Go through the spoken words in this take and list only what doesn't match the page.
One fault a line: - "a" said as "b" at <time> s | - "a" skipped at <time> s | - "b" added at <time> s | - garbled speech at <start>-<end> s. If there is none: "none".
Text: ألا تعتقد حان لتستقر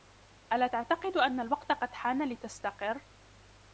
- "أن الوقت قد" added at 1.2 s